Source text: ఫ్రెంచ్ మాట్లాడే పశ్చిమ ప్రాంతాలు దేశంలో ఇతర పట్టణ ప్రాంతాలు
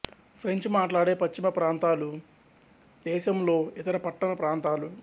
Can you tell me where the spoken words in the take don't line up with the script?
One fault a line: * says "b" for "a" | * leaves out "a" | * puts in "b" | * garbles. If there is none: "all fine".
all fine